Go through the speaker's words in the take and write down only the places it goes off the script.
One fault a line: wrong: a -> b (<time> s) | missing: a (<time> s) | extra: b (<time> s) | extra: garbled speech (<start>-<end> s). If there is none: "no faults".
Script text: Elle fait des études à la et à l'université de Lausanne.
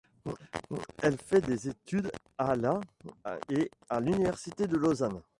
no faults